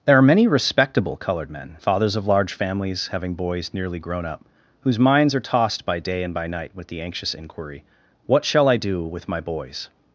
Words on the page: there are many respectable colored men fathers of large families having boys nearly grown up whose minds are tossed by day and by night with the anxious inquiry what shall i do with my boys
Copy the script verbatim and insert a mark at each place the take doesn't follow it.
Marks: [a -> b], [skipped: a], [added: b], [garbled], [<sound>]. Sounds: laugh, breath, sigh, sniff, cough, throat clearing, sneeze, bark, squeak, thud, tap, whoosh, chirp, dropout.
there are many respectable colored men fathers of large families having boys nearly grown up whose minds are tossed by day and by night with the anxious inquiry what shall i do with my boys